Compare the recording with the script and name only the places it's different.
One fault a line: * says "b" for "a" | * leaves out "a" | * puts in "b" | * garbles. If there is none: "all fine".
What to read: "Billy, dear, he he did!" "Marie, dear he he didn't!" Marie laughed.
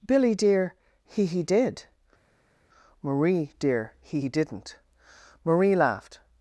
all fine